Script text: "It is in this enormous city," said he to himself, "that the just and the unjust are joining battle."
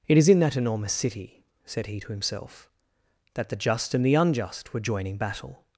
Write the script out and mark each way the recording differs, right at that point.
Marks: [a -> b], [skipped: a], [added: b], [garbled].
"It is in [this -> that] enormous city," said he to himself, "that the just and the unjust [are -> were] joining battle."